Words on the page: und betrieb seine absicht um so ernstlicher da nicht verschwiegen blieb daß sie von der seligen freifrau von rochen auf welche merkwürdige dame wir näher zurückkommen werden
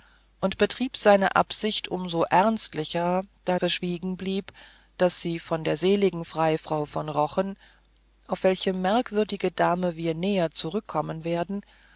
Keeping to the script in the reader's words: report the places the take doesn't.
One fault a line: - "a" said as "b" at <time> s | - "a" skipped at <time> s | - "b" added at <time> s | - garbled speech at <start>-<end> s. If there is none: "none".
- "nicht" skipped at 3.6 s